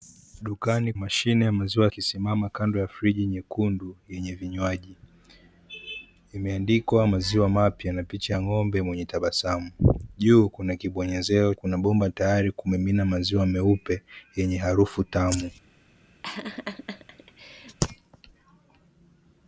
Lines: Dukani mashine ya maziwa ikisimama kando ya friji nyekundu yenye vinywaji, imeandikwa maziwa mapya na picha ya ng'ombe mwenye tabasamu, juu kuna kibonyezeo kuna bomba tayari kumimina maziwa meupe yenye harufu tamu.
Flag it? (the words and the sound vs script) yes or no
yes